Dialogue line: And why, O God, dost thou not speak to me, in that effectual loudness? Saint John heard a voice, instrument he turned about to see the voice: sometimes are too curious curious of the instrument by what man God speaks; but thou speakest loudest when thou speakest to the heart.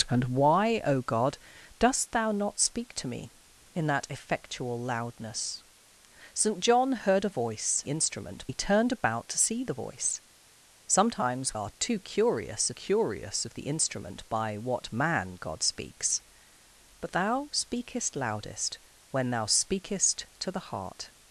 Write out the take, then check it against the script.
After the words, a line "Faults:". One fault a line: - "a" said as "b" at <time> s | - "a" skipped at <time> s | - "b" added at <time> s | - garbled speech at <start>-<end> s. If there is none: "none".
And why, O God, dost thou not speak to me, in that effectual loudness? Saint John heard a voice, instrument he turned about to see the voice: sometimes are too curious curious of the instrument by what man God speaks; but thou speakest loudest when thou speakest to the heart.
Faults:
none